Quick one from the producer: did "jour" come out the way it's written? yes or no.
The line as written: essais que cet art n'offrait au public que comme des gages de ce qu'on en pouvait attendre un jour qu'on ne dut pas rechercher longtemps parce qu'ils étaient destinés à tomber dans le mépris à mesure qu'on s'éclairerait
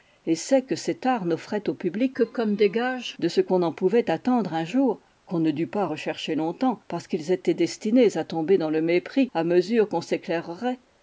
yes